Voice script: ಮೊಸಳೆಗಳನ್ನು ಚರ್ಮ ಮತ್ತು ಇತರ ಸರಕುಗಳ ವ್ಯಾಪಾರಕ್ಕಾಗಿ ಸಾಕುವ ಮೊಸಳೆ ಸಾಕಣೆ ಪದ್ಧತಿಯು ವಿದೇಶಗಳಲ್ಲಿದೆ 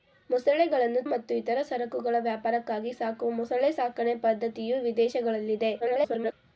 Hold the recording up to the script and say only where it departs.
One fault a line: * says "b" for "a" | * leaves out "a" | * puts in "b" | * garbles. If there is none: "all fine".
* leaves out "ಚರ್ಮ"
* garbles